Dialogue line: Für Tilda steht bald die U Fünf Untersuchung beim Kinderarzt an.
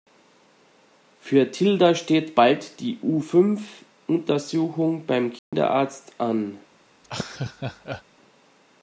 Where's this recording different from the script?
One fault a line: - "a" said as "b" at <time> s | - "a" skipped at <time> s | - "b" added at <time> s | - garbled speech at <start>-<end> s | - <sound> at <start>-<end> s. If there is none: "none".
- dropout at 5.4-5.5 s
- laugh at 7.0-8.0 s